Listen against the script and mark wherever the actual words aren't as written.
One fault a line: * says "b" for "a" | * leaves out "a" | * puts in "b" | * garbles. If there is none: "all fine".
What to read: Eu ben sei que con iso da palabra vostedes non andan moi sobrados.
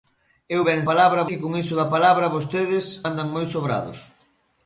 * says "palabra" for "sei"
* leaves out "non"